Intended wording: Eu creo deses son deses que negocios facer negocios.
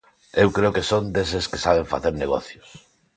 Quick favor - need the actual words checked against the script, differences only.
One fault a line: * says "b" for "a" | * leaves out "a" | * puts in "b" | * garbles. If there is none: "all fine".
* says "que" for "deses"
* says "saben" for "negocios"